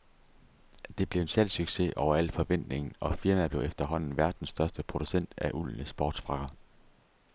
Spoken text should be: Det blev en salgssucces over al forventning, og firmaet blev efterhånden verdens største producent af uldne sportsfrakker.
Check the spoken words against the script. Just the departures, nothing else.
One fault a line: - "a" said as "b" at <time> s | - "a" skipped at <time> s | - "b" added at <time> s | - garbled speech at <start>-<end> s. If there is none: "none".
none